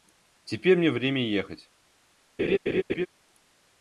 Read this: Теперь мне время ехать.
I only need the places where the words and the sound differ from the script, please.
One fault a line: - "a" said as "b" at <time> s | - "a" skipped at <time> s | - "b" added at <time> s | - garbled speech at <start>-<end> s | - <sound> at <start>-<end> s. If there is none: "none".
- laugh at 2.4-3.1 s